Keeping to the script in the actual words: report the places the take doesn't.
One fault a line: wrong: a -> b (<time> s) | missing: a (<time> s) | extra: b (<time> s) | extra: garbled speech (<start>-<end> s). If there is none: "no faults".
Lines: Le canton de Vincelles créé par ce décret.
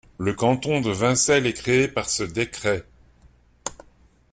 extra: est (1.5 s)